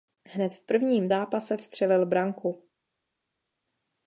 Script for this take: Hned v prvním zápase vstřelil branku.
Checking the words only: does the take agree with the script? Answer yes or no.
yes